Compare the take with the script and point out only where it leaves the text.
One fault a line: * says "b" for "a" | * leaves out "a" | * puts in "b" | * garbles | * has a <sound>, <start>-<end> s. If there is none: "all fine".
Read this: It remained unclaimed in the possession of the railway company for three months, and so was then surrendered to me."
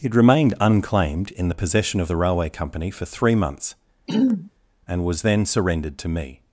* has a throat clearing, 4.1-4.5 s
* leaves out "so"